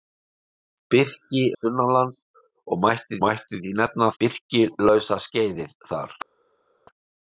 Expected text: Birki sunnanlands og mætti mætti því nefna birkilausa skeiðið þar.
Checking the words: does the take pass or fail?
pass